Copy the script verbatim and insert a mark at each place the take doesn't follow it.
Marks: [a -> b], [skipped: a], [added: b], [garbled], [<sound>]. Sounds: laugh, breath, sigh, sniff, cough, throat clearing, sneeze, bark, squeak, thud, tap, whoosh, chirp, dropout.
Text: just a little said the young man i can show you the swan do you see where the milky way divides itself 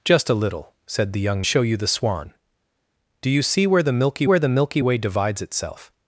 just a little said the young [skipped: man i can] show you the swan do you see where the milky [added: where the milky] way divides itself